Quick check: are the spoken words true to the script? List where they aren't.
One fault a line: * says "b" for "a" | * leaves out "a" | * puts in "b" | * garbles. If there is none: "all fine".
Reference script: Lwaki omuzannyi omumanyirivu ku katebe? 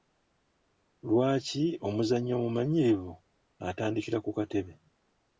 * puts in "atandikira"